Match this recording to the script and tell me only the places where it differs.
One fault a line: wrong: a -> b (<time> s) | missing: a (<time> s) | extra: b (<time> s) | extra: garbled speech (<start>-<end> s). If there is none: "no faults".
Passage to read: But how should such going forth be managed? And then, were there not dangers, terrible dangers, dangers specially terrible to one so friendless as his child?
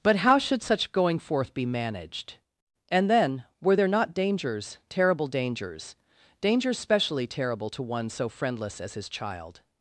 no faults